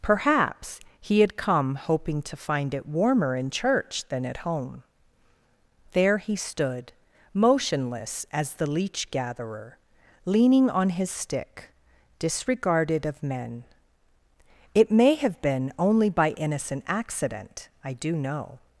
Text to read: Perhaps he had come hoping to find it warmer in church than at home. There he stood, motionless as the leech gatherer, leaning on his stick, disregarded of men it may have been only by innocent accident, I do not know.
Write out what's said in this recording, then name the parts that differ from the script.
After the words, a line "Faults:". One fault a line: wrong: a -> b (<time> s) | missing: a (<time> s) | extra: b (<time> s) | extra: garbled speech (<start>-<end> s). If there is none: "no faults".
Perhaps he had come hoping to find it warmer in church than at home. There he stood, motionless as the leech gatherer, leaning on his stick, disregarded of men it may have been only by innocent accident, I do know.
Faults:
missing: not (18.1 s)